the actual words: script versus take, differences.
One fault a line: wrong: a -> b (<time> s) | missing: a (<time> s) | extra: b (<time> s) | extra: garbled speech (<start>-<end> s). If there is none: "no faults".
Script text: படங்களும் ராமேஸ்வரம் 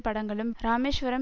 no faults